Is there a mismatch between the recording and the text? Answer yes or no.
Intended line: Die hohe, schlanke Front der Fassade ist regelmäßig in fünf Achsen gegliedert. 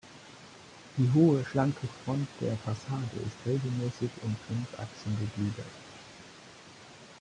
no